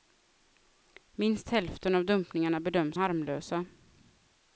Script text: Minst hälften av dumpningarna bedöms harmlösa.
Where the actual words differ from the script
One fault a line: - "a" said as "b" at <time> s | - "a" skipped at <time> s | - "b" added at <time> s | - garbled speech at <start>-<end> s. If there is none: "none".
none